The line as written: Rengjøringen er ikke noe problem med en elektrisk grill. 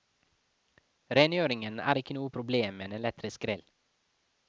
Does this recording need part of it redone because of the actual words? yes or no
no